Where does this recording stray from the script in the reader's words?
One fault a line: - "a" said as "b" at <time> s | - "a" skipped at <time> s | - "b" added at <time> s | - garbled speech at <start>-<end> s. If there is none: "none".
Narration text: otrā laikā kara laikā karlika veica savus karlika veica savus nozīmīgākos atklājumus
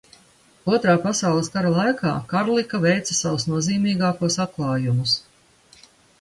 - "laikā" said as "pasaules" at 1.0 s
- "karlika veica savus" skipped at 3.5 s